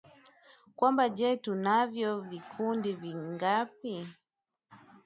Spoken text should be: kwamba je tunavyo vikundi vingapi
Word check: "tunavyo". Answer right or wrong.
right